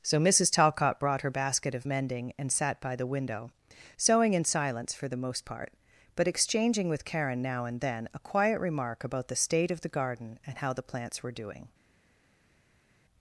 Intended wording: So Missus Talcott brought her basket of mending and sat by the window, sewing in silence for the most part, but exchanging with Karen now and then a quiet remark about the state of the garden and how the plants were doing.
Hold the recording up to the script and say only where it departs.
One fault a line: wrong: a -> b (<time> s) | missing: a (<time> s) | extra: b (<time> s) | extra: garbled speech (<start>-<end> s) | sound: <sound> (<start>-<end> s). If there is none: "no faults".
no faults